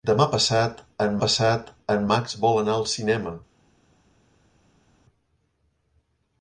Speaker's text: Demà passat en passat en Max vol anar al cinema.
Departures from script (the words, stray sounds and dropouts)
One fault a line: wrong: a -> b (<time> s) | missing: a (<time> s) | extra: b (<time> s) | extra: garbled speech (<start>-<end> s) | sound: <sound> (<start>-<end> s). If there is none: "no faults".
no faults